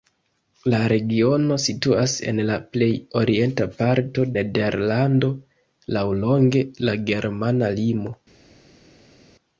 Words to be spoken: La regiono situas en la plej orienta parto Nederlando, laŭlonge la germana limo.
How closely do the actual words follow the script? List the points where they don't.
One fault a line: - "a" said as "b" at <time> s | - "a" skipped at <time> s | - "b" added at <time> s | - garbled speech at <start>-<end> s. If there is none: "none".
none